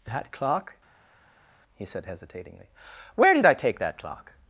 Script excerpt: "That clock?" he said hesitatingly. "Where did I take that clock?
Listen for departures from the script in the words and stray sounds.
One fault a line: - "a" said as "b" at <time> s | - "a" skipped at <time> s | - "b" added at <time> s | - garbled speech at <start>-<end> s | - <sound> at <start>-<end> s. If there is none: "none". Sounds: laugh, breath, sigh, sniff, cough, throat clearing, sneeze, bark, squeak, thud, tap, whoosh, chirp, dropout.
none